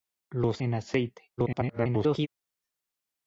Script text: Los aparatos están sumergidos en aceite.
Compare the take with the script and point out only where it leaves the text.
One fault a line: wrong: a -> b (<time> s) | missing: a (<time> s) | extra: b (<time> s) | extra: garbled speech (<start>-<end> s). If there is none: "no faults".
missing: aparatos están sumergidos (0.6 s)
extra: garbled speech (1.4-2.3 s)